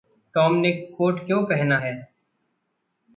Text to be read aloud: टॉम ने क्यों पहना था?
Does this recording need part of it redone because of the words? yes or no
yes